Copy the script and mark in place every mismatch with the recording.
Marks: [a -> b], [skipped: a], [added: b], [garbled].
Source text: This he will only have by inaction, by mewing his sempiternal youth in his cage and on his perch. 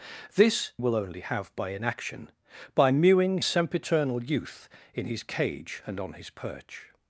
This [skipped: he] will only have by inaction, by mewing [skipped: his] sempiternal youth in his cage and on his perch.